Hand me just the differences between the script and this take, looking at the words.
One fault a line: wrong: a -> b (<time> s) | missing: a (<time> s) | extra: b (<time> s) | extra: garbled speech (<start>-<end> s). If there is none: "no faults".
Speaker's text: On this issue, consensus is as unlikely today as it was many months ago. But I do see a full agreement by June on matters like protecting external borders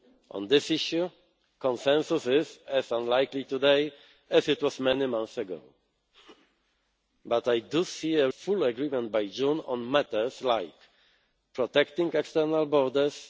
no faults